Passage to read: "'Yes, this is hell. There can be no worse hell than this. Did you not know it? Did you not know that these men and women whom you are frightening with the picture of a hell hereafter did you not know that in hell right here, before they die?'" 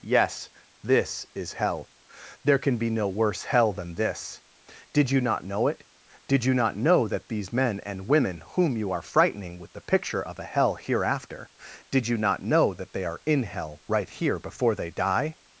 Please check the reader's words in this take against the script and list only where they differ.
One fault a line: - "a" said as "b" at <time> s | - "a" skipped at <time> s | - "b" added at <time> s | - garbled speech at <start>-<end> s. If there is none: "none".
- "they are" added at 12.9 s